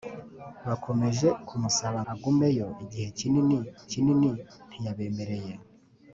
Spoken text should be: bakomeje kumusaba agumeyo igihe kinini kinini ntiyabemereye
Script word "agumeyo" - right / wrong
right